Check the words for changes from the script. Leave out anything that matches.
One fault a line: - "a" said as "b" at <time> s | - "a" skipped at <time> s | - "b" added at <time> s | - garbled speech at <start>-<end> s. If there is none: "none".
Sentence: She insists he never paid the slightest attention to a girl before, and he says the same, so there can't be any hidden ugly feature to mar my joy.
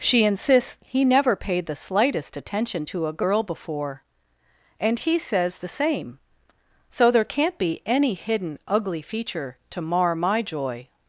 none